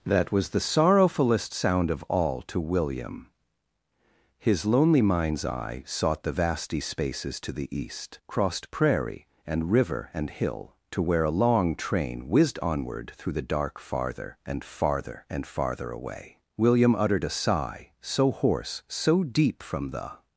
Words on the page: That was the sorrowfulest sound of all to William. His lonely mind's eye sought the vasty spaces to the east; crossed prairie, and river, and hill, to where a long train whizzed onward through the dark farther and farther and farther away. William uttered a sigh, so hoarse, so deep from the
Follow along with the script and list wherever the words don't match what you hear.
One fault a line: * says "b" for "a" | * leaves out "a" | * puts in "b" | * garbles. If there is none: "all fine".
all fine